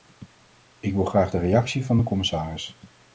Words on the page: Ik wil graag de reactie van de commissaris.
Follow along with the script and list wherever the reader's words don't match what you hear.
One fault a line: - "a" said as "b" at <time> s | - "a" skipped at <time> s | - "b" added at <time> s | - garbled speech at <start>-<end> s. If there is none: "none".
none